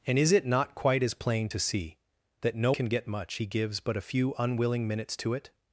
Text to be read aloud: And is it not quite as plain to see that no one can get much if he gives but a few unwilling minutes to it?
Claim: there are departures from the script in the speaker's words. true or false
true